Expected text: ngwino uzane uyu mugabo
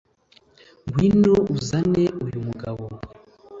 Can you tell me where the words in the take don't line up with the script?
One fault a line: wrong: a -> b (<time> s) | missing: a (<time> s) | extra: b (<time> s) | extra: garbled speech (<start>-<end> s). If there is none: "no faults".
no faults